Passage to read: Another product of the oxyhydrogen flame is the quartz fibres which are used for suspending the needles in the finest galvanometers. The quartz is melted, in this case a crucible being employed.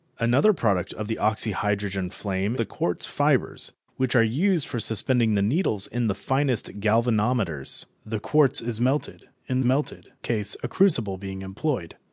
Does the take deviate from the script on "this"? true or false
true